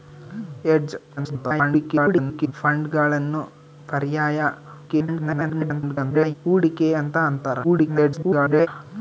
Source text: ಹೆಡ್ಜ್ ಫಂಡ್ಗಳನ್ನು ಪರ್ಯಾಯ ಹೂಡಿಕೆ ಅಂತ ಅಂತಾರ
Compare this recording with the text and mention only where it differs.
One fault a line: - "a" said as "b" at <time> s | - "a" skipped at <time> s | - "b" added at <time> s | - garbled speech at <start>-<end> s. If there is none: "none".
- garbled speech at 1.2-2.5 s
- garbled speech at 4.9-6.4 s
- garbled speech at 7.6-8.7 s